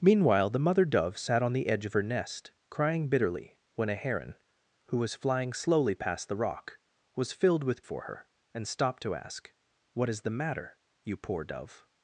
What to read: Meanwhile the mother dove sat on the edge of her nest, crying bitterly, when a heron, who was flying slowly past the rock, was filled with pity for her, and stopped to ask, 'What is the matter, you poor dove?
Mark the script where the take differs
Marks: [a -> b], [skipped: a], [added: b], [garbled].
Meanwhile the mother dove sat on the edge of her nest, crying bitterly, when a heron, who was flying slowly past the rock, was filled with [skipped: pity] for her, and stopped to ask, 'What is the matter, you poor dove?